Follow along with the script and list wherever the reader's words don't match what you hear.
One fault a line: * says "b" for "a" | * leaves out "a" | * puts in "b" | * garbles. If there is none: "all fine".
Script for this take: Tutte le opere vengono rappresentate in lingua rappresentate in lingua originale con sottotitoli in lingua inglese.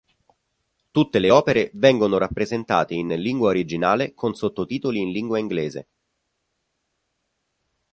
* leaves out "rappresentate in lingua"